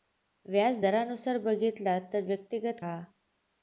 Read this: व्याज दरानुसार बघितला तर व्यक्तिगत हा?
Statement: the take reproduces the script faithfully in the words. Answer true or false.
true